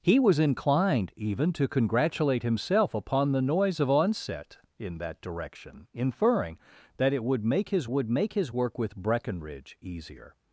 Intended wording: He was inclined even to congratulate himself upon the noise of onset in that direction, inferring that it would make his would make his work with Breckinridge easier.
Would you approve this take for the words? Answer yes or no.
yes